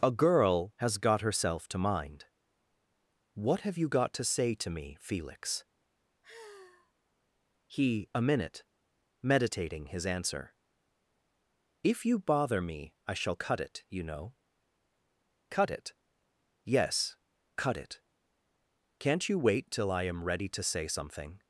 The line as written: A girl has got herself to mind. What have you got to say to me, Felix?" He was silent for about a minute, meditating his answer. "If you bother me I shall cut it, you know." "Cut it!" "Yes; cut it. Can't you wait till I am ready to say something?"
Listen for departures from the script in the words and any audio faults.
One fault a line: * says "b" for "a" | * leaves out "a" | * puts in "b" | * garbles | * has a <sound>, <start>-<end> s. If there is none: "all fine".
* has a sigh, 6.2-6.9 s
* leaves out "was silent for about"